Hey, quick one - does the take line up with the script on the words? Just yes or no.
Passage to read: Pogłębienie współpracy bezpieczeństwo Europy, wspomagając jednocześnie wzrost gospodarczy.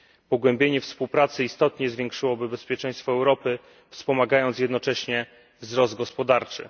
no